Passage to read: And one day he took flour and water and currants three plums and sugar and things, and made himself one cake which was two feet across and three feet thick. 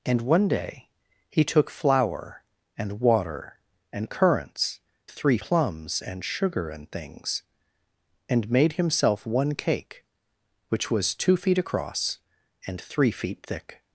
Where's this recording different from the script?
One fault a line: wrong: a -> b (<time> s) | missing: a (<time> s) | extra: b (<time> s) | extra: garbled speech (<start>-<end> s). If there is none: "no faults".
no faults